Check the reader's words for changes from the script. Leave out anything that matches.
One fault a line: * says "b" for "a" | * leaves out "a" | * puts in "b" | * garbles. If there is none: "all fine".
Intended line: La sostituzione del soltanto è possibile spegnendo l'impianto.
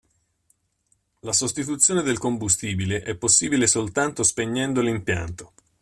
* says "combustibile" for "soltanto"
* puts in "soltanto"